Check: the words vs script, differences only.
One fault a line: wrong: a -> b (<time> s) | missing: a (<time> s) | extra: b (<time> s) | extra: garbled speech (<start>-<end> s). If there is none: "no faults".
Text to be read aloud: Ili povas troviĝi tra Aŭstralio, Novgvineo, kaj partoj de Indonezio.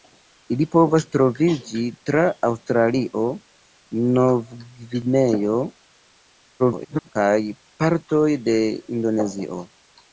extra: garbled speech (6.6-7.1 s)